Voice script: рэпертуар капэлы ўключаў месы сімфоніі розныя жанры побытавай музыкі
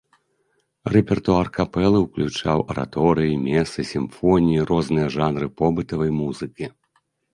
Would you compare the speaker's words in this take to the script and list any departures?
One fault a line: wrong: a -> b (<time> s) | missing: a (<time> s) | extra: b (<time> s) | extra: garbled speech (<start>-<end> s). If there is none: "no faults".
extra: араторыі (2.7 s)